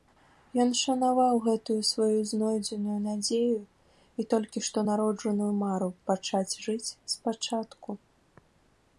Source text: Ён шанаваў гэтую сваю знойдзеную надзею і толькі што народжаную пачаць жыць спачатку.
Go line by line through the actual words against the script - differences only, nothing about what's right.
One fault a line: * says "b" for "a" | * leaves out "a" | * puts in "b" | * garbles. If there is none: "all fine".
* puts in "мару"